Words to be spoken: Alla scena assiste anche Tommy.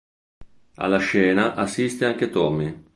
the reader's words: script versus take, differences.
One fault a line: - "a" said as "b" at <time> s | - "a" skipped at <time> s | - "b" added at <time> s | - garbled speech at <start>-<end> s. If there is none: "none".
none